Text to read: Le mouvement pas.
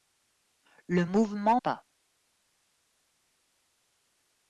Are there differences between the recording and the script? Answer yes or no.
no